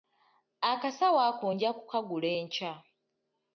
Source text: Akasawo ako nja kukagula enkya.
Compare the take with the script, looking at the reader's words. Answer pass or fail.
pass